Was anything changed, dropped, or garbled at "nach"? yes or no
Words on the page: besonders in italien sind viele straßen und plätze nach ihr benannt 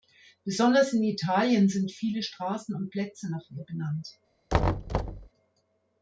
no